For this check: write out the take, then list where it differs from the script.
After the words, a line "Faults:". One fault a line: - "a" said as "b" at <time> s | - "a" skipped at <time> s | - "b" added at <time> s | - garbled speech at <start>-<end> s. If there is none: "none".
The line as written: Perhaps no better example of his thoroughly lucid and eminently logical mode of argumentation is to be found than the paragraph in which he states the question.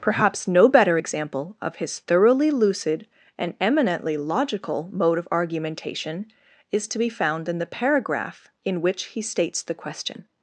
Perhaps no better example of his thoroughly lucid and eminently logical mode of argumentation is to be found in the paragraph in which he states the question.
Faults:
- "than" said as "in" at 7.5 s